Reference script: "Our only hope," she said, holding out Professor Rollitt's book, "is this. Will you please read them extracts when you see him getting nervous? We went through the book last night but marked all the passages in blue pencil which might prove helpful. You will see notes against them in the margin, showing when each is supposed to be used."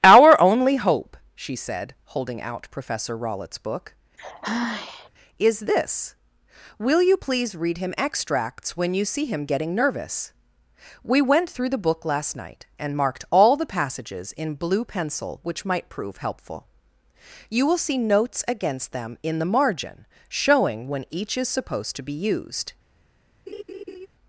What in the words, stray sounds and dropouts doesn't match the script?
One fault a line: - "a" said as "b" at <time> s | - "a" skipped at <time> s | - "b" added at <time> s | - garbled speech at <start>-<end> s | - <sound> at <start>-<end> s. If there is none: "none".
- sigh at 4.2-5.1 s
- "them" said as "him" at 7.8 s
- "but" said as "and" at 12.8 s
- laugh at 23.5-24.1 s